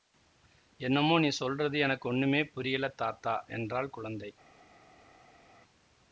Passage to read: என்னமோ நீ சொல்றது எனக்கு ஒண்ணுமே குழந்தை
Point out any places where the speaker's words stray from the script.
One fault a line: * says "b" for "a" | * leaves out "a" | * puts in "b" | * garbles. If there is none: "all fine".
* puts in "புரியலை தாத்தா என்றாள்"